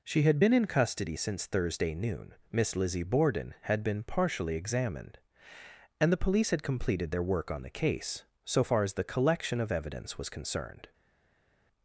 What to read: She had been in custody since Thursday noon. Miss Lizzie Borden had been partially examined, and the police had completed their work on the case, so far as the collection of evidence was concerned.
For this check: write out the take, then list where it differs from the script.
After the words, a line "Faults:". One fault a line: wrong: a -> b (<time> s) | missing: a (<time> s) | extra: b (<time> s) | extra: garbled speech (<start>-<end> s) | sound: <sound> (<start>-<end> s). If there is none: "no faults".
She had been in custody since Thursday noon. Miss Lizzie Borden had been partially examined, and the police had completed their work on the case, so far as the collection of evidence was concerned.
Faults:
no faults